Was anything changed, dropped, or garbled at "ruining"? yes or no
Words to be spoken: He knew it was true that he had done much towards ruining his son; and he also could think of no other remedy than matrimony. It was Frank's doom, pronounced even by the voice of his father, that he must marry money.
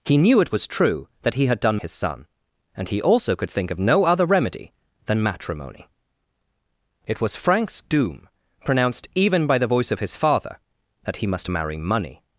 yes